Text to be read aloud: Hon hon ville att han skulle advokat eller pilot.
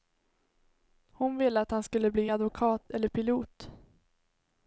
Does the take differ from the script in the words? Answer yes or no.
yes